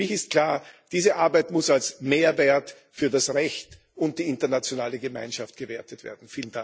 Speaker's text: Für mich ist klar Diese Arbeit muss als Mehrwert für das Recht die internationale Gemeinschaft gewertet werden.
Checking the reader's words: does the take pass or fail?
fail